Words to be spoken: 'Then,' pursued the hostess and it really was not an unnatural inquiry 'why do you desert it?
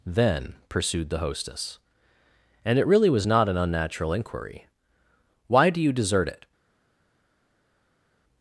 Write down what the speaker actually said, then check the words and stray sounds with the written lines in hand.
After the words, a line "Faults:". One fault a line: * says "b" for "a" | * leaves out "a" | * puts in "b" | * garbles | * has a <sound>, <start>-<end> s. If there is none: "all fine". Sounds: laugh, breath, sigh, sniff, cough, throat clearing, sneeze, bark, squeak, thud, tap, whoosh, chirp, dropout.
'Then,' pursued the hostess and it really was not an unnatural inquiry 'why do you desert it?
Faults:
all fine